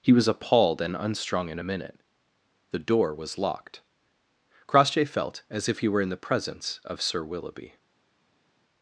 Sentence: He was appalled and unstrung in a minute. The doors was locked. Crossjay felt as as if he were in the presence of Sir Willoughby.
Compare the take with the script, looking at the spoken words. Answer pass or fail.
fail